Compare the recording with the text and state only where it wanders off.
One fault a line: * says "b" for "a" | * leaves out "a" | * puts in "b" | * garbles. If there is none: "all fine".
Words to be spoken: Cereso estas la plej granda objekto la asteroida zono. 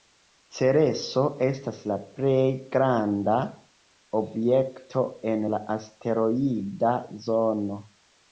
* puts in "en"